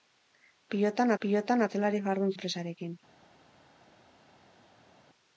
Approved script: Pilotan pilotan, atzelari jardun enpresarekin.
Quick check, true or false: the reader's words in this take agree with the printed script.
true